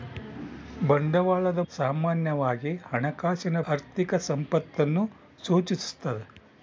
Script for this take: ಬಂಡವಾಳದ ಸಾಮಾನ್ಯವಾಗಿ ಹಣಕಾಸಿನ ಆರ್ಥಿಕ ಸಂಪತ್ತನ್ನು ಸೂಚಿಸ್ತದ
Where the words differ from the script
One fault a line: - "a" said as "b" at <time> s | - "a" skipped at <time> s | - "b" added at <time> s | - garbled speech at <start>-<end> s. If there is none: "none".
none